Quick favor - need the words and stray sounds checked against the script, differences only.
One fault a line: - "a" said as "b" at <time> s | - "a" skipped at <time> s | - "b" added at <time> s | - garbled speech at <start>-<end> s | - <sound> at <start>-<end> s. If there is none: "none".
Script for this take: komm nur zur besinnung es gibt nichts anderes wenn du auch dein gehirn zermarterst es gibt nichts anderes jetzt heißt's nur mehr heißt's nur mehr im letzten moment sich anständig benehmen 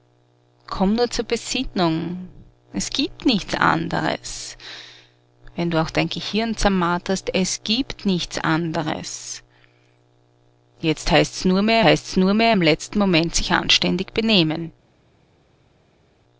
none